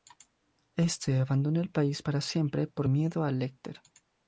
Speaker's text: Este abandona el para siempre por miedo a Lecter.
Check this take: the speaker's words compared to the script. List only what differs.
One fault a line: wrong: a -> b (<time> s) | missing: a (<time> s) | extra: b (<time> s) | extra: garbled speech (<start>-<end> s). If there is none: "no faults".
extra: país (1.7 s)